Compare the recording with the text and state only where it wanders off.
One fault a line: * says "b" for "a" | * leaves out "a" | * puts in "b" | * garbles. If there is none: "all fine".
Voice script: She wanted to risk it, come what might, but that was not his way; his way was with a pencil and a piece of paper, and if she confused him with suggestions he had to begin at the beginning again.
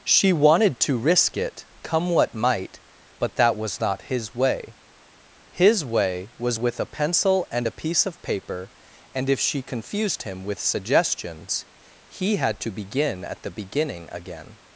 all fine